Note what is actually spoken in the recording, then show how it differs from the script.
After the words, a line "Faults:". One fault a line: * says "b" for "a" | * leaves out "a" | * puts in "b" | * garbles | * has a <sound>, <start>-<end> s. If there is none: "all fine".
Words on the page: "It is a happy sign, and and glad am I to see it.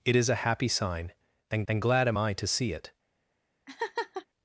"It is a happy sign, and and glad am I to see it.
Faults:
* has a laugh, 3.7-4.3 s